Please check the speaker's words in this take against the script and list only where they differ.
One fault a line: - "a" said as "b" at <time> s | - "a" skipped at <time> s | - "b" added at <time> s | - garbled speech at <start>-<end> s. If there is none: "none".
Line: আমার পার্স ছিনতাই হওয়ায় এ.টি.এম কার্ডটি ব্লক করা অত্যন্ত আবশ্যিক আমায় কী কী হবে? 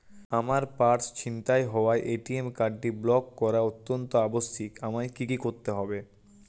- "করতে" added at 5.4 s